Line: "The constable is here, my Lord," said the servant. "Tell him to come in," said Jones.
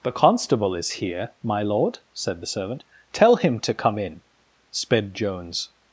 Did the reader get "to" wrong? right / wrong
right